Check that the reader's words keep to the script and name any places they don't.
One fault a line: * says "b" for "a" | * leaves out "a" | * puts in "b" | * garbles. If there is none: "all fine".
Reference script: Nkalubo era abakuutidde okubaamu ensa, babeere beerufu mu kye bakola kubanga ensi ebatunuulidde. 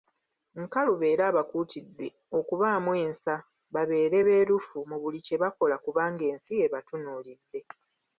* puts in "buli"